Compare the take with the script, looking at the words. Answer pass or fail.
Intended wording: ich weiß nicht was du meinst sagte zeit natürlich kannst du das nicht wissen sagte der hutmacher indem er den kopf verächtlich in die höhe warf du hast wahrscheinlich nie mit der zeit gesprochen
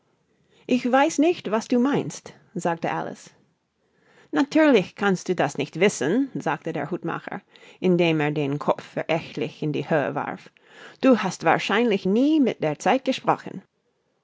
fail